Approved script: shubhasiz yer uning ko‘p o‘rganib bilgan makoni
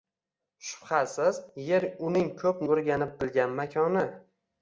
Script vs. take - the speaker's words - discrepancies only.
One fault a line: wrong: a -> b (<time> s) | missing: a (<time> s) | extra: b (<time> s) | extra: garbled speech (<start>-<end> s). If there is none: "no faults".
no faults